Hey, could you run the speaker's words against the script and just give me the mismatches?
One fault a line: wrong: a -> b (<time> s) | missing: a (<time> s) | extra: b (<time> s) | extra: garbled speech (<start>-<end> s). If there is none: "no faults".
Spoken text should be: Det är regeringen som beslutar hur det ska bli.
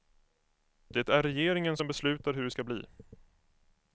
no faults